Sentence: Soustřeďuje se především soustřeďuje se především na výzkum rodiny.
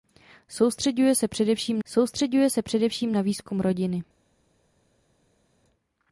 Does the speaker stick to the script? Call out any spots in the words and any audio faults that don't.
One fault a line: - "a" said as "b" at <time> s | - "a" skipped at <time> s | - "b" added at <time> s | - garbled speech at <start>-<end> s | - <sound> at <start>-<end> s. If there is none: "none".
none